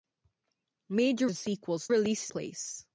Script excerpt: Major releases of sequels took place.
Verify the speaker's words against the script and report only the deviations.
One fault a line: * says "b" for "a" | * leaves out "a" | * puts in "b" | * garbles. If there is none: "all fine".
* leaves out "releases"
* says "releases" for "took"